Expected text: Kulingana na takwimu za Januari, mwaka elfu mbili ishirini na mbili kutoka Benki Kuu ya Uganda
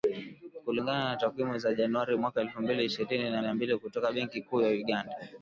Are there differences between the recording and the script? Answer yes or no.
yes